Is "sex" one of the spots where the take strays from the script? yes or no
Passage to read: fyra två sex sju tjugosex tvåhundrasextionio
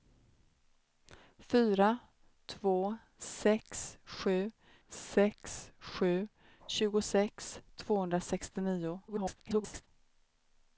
no